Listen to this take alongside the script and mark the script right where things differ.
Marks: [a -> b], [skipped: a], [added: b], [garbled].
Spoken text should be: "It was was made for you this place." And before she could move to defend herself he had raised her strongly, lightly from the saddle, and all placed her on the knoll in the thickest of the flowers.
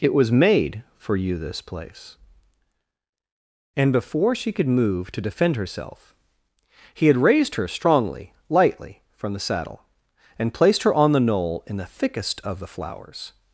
"It was [skipped: was] made for you this place." And before she could move to defend herself he had raised her strongly, lightly from the saddle, and [skipped: all] placed her on the knoll in the thickest of the flowers.